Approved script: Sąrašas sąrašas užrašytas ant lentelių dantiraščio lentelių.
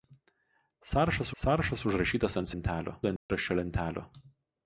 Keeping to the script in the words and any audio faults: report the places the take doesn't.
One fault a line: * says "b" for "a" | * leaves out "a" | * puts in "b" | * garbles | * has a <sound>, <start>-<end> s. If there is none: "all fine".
* has a dropout, 3.2-3.3 s